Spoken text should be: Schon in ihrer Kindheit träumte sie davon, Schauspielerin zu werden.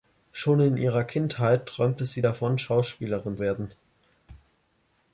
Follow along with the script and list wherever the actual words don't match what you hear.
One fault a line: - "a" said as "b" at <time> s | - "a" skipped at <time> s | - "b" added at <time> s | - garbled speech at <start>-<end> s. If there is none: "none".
- "zu" skipped at 3.4 s